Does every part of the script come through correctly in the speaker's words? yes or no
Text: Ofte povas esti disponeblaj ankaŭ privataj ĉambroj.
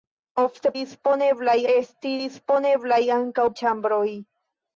no